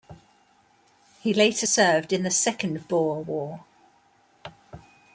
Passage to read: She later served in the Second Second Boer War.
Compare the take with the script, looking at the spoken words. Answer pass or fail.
fail